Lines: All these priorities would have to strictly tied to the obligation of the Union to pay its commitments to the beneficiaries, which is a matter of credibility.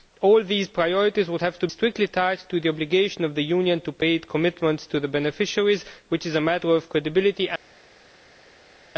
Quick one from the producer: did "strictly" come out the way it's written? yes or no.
yes